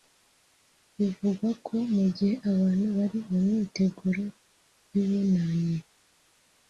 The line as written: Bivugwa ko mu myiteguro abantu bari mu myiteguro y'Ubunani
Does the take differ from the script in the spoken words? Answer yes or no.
yes